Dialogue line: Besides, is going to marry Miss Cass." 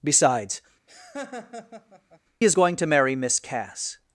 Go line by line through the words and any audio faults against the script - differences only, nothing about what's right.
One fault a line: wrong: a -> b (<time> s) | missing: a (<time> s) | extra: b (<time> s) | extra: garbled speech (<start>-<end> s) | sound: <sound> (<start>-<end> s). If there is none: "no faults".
sound: laugh (0.9-2.2 s)